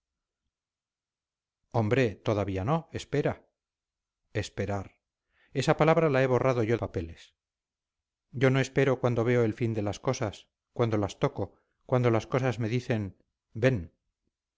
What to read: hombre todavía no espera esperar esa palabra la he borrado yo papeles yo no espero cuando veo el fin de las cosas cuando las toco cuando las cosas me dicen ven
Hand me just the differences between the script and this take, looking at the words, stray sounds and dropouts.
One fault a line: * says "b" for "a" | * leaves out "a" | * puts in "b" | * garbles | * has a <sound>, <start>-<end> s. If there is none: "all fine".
all fine